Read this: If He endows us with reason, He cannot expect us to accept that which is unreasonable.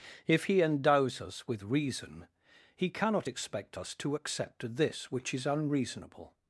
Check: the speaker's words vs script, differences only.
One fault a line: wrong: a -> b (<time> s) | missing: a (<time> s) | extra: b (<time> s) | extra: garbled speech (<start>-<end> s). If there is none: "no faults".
wrong: that -> this (4.8 s)